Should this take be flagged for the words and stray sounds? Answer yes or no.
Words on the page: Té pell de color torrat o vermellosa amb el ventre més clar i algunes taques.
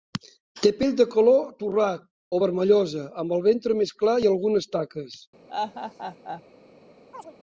yes